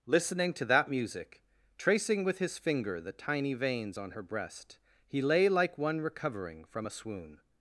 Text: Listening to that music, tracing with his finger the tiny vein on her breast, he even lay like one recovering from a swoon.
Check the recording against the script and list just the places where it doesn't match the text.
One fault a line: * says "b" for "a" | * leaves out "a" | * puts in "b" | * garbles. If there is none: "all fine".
* says "veins" for "vein"
* leaves out "even"